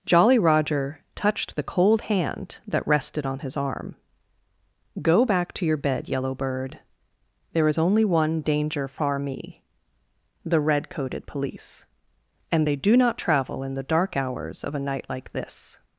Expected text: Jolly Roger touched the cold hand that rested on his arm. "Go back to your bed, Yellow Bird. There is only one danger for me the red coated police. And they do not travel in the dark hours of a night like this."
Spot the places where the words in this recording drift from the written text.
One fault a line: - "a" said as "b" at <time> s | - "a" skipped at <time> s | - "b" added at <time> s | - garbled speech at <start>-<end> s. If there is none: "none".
- "for" said as "far" at 8.9 s